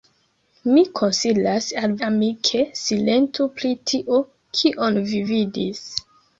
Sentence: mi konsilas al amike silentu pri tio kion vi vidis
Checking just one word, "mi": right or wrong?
right